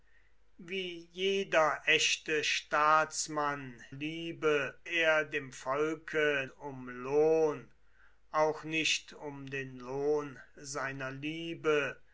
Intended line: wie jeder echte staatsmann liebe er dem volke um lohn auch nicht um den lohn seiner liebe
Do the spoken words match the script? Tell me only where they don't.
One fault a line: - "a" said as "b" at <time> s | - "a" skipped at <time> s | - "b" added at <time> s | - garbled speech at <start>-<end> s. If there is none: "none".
none